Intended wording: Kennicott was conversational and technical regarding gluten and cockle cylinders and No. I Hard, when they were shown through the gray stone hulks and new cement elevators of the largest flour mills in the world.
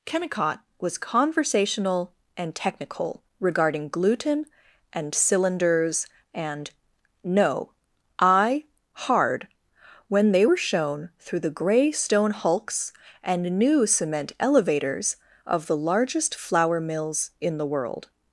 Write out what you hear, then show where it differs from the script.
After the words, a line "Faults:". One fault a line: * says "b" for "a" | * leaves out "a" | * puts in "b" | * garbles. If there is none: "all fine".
Kennicott was conversational and technical regarding gluten and cylinders and No. I Hard, when they were shown through the gray stone hulks and new cement elevators of the largest flour mills in the world.
Faults:
* leaves out "cockle"